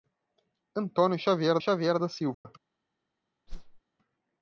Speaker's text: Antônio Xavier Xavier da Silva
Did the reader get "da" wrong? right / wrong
right